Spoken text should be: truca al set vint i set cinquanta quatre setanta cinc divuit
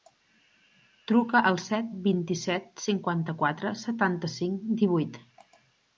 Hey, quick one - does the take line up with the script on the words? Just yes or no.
yes